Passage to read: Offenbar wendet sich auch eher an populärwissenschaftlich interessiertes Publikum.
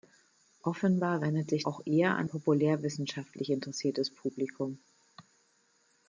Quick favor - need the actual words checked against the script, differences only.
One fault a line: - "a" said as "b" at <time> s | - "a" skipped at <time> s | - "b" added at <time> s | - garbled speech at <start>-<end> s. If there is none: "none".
none